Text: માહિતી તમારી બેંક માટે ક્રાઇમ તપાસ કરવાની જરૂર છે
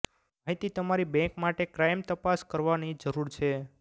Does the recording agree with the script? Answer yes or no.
yes